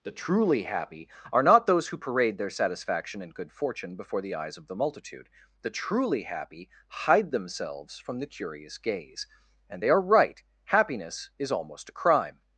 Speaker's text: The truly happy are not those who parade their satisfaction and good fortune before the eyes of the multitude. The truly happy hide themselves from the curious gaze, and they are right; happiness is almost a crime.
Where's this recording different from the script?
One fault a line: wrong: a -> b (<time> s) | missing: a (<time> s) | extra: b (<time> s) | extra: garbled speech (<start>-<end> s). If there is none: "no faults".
no faults